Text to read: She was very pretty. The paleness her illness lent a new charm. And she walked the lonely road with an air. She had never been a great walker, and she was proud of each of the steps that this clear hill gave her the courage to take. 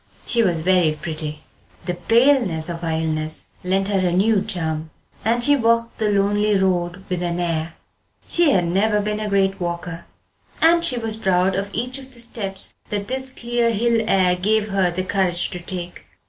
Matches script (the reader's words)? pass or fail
fail